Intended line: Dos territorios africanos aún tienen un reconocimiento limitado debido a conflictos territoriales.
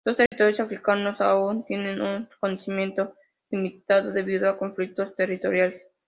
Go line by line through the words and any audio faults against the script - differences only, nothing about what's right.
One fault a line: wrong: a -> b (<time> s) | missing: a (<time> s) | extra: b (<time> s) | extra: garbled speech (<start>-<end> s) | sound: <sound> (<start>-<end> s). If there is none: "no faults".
sound: dropout (0.3-0.3 s)